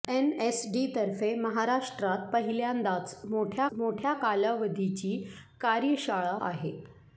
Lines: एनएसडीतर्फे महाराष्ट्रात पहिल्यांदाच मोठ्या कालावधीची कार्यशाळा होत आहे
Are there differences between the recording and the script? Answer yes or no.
yes